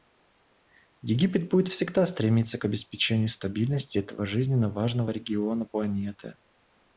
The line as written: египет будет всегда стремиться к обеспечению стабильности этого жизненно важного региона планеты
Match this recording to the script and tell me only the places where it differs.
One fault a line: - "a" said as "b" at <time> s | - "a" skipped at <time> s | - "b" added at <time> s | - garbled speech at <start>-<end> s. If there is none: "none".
none